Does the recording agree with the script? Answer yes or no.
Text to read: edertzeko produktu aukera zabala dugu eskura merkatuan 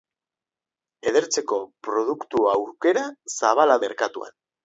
no